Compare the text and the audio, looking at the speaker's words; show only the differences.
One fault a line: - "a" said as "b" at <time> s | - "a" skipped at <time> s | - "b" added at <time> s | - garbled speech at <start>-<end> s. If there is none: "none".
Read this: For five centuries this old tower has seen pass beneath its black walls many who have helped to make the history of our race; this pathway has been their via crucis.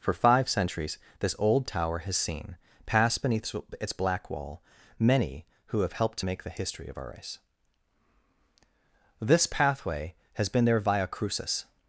- "walls" said as "wall" at 4.3 s